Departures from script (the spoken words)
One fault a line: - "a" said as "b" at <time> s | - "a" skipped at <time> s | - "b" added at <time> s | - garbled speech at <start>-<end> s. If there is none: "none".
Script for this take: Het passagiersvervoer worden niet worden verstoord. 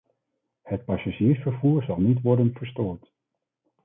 - "worden" said as "zal" at 1.8 s